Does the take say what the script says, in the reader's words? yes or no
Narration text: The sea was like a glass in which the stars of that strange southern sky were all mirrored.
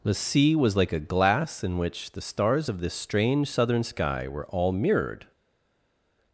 no